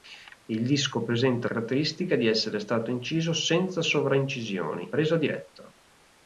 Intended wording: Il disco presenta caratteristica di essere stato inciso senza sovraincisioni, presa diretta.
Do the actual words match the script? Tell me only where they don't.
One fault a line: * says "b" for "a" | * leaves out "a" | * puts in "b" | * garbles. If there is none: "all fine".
all fine